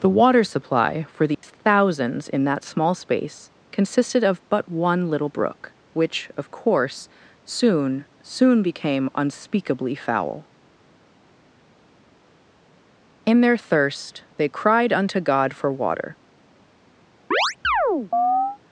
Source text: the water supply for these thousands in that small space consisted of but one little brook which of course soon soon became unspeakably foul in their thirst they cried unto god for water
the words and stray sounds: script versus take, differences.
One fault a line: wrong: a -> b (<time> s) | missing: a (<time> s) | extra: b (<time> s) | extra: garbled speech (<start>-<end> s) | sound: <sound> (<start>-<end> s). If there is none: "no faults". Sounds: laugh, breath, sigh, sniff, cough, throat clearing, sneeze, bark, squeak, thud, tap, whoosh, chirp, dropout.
sound: dropout (1.3-1.4 s)
sound: chirp (17.3-18.6 s)